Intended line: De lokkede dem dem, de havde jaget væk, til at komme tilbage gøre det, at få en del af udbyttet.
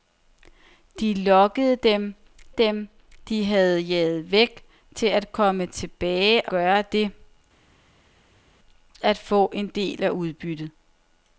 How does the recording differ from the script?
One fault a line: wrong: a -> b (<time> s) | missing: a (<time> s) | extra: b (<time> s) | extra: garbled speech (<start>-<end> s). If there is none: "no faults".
no faults